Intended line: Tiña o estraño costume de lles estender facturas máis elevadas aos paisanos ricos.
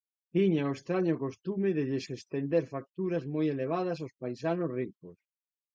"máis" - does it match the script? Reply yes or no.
no